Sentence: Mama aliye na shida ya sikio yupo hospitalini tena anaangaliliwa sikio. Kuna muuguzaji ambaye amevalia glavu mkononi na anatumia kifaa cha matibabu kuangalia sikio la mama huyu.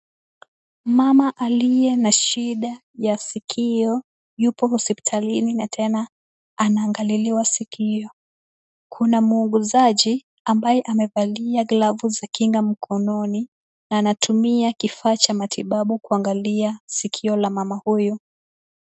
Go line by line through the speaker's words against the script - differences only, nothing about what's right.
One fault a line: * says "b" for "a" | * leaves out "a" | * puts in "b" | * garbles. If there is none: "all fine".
* puts in "na"
* puts in "za kinga"